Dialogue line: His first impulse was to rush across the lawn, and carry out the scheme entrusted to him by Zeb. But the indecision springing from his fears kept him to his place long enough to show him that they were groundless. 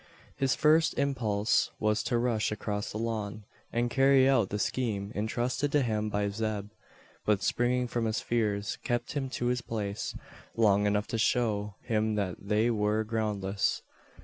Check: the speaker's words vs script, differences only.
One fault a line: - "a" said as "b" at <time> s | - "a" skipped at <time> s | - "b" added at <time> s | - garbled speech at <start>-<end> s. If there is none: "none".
- "the indecision" skipped at 7.4 s